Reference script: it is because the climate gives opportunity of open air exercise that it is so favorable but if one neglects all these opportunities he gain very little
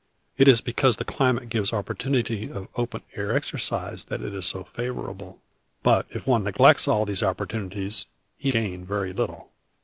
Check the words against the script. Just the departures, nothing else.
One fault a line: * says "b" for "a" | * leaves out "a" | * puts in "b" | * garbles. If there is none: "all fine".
all fine